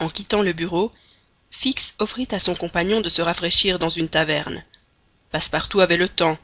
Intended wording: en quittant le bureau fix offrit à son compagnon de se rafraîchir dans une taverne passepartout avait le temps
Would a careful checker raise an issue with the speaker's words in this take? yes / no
no